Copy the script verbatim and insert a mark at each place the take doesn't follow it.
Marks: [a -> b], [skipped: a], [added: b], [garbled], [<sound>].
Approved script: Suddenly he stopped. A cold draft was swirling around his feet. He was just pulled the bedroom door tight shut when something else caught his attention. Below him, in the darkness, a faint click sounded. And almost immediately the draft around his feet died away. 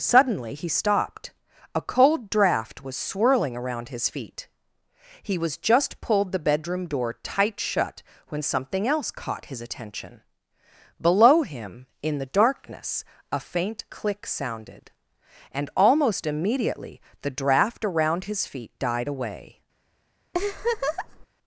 Suddenly he stopped. A cold draft was swirling around his feet. He was just pulled the bedroom door tight shut when something else caught his attention. Below him, in the darkness, a faint click sounded. And almost immediately the draft around his feet died away. [laugh]